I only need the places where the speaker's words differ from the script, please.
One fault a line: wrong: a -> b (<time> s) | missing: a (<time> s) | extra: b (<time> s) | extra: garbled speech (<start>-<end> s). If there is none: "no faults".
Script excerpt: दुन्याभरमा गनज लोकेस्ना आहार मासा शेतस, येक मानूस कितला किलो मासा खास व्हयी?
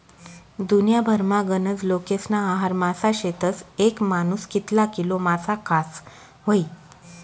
no faults